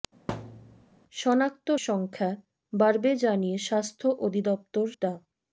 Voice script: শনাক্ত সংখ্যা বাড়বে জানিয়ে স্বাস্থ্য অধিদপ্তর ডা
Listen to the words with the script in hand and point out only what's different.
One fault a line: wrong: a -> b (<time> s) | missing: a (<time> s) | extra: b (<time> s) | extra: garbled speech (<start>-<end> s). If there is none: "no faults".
no faults